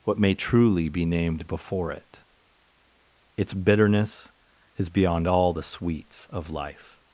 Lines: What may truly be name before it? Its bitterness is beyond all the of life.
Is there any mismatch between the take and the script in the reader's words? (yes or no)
yes